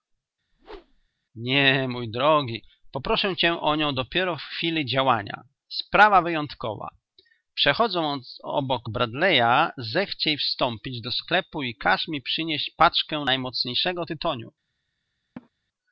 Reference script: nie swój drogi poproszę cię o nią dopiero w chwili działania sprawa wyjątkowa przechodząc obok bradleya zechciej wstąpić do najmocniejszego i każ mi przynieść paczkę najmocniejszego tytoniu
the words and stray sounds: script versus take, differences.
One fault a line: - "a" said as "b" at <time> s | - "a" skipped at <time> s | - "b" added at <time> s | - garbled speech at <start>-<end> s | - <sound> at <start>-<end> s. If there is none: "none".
- whoosh at 0.5-1.1 s
- "swój" said as "mój" at 1.9 s
- "najmocniejszego" said as "sklepu" at 11.1 s
- laugh at 15.4-15.5 s